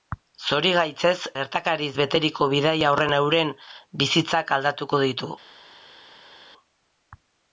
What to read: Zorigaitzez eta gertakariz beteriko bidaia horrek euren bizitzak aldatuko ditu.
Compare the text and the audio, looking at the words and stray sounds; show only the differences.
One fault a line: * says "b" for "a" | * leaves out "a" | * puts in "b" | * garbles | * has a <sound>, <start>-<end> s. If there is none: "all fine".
* leaves out "eta"